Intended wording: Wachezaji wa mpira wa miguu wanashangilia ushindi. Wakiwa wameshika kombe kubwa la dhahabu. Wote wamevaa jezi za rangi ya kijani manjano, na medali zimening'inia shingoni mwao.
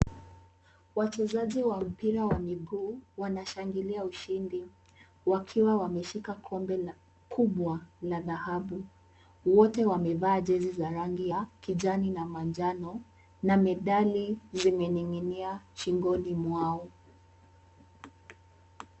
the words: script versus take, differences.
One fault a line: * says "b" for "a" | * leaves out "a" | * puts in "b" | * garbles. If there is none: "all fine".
* puts in "na"